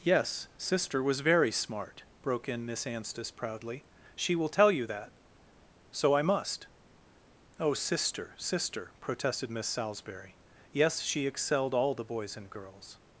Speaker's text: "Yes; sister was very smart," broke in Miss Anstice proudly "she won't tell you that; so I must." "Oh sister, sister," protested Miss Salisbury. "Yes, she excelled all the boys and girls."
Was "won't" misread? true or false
true